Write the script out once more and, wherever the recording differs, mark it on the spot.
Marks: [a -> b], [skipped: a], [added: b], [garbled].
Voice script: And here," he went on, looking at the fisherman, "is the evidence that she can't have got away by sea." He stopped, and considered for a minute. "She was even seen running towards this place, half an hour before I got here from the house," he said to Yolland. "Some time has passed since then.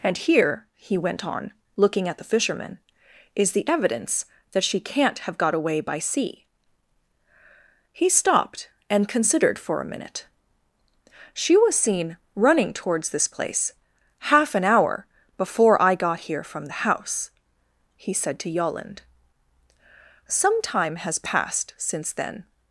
And here," he went on, looking at the fisherman, "is the evidence that she can't have got away by sea." He stopped, and considered for a minute. "She was [skipped: even] seen running towards this place, half an hour before I got here from the house," he said to Yolland. "Some time has passed since then.